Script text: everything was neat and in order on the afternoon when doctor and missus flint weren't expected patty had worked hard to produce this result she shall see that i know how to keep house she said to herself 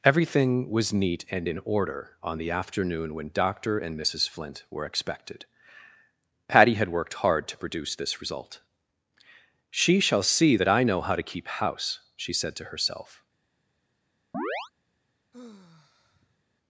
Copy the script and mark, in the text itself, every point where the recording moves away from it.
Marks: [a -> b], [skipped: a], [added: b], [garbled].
everything was neat and in order on the afternoon when doctor and missus flint [weren't -> were] expected patty had worked hard to produce this result she shall see that i know how to keep house she said to herself